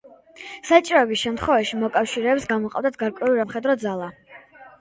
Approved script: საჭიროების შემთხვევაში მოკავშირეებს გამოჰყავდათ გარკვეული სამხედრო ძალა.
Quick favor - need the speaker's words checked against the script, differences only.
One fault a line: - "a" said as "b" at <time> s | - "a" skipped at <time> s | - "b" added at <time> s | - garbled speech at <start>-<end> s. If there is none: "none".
none